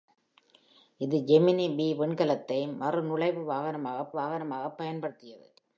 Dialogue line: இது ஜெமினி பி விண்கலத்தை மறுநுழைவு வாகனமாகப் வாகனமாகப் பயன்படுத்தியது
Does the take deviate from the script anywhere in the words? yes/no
no